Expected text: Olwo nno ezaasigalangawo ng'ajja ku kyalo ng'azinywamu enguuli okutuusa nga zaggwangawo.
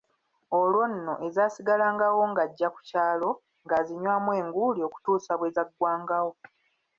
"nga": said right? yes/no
no